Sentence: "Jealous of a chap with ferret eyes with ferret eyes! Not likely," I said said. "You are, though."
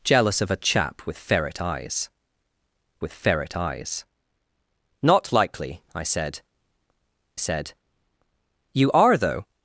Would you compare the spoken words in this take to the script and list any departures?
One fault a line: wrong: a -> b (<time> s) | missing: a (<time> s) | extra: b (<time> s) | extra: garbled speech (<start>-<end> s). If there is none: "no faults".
no faults